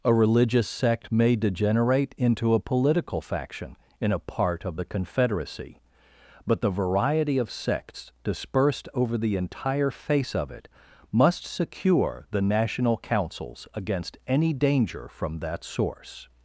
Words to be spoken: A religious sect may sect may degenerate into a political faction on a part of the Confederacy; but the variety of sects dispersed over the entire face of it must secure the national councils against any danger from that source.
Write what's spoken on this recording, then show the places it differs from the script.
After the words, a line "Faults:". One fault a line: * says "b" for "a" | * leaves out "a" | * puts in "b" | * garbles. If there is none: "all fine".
A religious sect may degenerate into a political faction in a part of the Confederacy; but the variety of sects dispersed over the entire face of it must secure the national councils against any danger from that source.
Faults:
* leaves out "sect may"
* says "in" for "on"